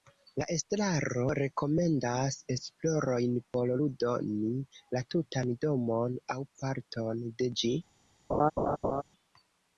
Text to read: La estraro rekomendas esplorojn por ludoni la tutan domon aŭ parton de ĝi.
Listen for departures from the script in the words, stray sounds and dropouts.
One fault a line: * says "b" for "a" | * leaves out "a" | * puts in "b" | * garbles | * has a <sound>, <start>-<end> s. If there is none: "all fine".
* has a laugh, 8.3-9.0 s